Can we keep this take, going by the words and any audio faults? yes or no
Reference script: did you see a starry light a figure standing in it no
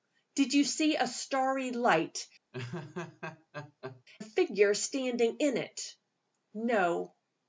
no